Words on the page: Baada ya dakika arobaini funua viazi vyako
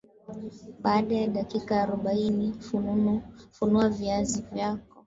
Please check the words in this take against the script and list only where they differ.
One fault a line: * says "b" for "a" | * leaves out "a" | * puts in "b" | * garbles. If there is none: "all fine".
all fine